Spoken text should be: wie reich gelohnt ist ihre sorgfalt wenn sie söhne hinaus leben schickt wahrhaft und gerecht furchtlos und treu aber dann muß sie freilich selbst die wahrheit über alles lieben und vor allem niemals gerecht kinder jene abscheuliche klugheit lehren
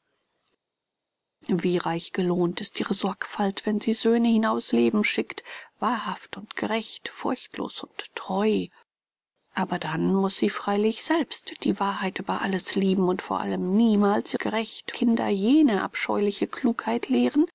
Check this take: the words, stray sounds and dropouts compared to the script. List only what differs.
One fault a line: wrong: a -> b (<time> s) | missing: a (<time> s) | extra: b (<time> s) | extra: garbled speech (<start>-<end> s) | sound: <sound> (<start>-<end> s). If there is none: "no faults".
no faults